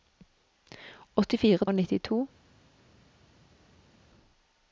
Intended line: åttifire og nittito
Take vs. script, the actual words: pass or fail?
pass